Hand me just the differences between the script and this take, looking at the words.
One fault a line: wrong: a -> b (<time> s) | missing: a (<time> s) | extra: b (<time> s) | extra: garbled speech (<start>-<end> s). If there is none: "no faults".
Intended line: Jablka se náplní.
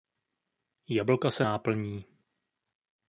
no faults